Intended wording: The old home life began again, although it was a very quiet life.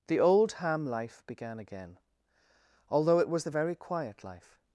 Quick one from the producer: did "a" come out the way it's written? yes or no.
no